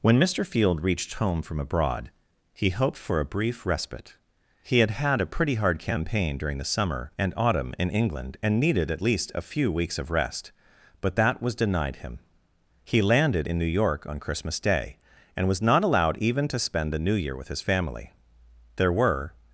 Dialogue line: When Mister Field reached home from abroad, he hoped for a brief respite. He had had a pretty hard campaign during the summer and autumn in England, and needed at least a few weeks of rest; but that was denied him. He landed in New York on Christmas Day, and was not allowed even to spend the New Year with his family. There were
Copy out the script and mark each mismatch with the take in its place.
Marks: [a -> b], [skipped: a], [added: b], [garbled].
When Mister Field reached home from abroad, he hoped for a brief respite. He had had a pretty hard campaign during the summer and autumn in England, and needed at least a few weeks of rest; but that was denied him. He landed in New York on Christmas Day, and was not allowed even to spend the New Year with his family. There were